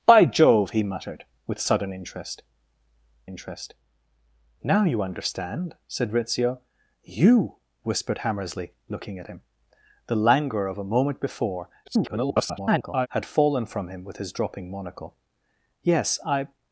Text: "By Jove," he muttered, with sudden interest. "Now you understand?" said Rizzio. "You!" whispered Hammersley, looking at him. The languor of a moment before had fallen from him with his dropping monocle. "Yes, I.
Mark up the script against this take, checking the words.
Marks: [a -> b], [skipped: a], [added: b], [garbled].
"By Jove," he muttered, with sudden interest. [added: interest] "Now you understand?" said Rizzio. "You!" whispered Hammersley, looking at him. The languor of a moment before [garbled] had fallen from him with his dropping monocle. "Yes, I.